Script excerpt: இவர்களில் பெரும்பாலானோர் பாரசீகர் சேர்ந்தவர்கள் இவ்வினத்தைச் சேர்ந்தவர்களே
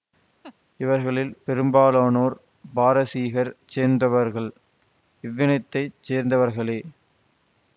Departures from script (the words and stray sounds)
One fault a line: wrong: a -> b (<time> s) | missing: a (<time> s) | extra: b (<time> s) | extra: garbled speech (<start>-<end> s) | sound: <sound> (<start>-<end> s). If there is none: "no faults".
sound: laugh (0.4-0.6 s)